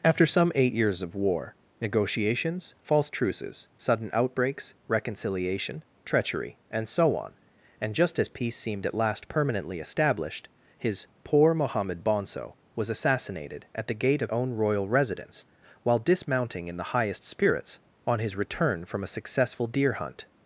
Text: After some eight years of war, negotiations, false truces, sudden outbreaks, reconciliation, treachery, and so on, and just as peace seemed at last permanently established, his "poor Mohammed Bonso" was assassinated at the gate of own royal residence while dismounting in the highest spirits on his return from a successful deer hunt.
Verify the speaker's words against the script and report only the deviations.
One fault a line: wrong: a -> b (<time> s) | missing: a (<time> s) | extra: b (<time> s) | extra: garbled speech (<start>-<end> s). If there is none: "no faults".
no faults